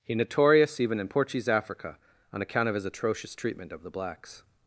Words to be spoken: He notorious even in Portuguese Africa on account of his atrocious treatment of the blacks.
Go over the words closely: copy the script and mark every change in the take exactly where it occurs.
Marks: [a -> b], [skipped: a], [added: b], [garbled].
He notorious even in Portuguese Africa on account of his atrocious treatment of the blacks.